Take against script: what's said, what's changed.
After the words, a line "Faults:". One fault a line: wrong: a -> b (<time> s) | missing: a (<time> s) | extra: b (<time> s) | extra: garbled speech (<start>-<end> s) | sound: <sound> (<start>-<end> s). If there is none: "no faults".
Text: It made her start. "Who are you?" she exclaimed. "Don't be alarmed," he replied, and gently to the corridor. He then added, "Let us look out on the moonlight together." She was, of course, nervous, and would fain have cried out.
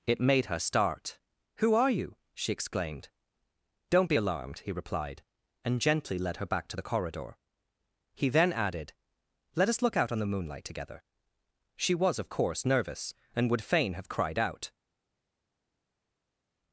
It made her start. "Who are you?" she exclaimed. "Don't be alarmed," he replied, and gently led her back to the corridor. He then added, "Let us look out on the moonlight together." She was, of course, nervous, and would fain have cried out.
Faults:
extra: led her back (6.2 s)